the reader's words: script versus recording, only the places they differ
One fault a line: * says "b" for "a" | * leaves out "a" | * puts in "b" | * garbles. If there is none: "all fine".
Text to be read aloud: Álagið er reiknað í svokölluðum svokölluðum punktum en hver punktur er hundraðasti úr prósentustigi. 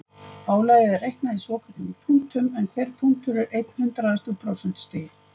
* leaves out "svokölluðum"
* puts in "einn"